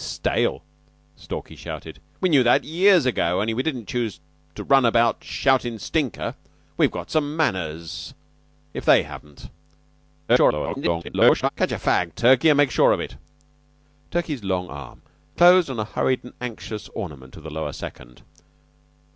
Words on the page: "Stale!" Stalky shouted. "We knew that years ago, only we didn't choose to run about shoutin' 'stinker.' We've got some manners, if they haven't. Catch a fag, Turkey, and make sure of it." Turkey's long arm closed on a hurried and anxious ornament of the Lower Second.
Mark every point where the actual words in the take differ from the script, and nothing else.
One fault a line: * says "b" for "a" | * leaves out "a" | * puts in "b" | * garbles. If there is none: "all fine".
* garbles